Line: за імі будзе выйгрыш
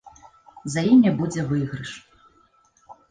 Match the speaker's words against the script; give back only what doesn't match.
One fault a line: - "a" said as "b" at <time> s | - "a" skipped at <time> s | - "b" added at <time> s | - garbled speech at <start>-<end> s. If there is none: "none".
none